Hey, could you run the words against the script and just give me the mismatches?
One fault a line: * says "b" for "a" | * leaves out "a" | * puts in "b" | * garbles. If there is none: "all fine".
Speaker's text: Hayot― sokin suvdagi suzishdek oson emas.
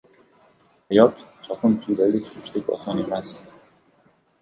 all fine